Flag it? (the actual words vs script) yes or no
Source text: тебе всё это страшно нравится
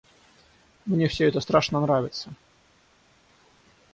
yes